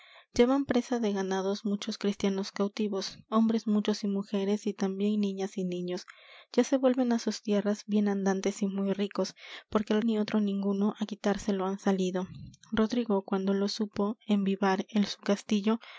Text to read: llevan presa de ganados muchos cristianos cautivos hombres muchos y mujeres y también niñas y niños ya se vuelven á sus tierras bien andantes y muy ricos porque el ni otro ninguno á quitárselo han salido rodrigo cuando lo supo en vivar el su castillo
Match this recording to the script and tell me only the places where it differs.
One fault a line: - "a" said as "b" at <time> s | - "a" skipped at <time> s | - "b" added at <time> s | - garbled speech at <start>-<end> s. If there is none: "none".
none